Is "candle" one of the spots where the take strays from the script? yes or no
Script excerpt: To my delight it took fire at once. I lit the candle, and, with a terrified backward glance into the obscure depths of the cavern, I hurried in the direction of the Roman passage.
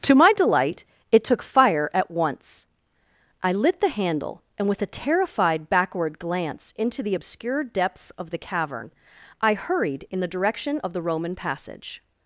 yes